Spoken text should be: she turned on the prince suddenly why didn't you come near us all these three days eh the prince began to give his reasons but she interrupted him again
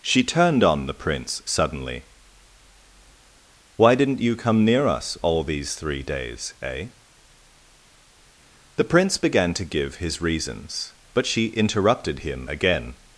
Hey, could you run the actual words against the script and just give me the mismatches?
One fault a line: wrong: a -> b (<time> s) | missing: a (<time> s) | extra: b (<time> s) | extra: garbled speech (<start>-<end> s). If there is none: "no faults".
no faults